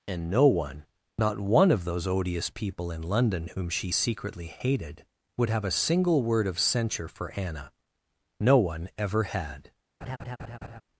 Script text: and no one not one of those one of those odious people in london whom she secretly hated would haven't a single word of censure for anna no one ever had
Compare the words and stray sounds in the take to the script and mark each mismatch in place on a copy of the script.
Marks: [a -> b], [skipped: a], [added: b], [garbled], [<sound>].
and no one not one of those [skipped: one of those] odious people in london whom she secretly hated would [haven't -> have] a single word of censure for anna no one ever had [laugh]